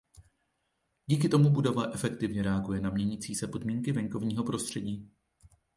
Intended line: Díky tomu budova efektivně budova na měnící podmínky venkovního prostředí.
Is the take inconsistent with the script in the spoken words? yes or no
yes